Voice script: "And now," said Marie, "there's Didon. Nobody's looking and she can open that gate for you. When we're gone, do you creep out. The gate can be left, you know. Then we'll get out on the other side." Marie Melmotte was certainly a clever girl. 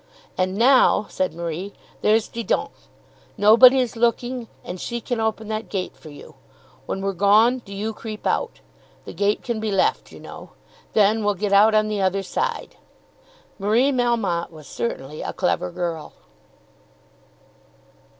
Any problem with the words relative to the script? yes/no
no